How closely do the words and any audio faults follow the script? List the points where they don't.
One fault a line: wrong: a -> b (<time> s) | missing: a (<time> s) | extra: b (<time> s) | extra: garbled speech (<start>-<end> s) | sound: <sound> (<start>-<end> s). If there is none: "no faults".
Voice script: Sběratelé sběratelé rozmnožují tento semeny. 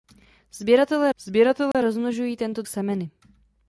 sound: dropout (1.7-1.7 s)